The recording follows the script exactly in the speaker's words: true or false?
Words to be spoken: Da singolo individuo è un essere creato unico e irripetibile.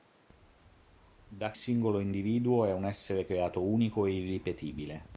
true